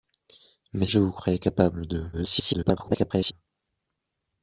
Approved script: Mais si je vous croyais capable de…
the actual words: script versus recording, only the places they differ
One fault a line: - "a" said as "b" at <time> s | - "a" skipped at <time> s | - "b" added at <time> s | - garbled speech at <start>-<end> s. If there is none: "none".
- "si" skipped at 0.9 s
- garbled speech at 2.1-3.3 s